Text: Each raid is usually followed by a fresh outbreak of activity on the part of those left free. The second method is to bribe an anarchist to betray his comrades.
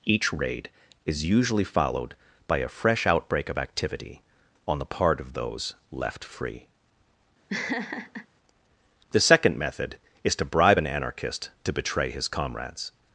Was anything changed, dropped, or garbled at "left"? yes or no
no